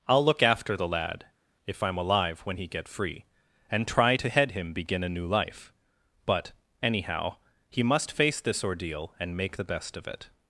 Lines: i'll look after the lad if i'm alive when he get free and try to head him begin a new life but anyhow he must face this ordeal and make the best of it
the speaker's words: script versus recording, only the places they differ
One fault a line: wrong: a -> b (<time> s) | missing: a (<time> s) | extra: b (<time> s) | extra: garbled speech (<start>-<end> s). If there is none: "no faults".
no faults